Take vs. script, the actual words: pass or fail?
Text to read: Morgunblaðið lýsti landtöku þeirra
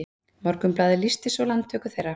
fail